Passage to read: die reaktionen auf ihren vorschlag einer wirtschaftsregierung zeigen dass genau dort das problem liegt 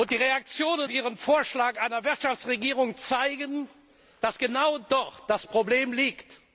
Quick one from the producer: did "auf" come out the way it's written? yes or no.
no